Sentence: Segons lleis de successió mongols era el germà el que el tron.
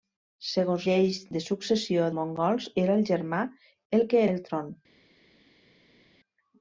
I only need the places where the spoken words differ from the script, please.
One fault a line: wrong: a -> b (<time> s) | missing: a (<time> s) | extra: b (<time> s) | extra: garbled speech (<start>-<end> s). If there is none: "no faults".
no faults